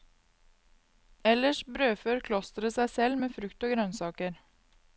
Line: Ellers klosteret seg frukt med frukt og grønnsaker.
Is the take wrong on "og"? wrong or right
right